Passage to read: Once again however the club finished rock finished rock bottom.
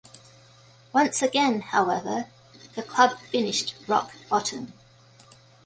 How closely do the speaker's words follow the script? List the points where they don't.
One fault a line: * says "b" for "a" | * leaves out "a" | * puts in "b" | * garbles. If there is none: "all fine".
* leaves out "finished rock"